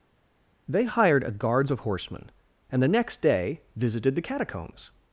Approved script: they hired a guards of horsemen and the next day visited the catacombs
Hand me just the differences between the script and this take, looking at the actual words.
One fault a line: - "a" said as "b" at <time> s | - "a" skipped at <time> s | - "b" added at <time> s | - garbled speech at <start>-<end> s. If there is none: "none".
none